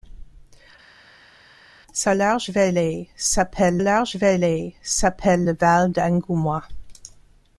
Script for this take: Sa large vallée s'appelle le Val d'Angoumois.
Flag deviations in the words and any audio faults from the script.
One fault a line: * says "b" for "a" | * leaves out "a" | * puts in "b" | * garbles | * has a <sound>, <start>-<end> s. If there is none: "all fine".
* puts in "large vallée s'appelle"